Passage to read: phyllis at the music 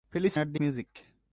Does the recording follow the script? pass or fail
pass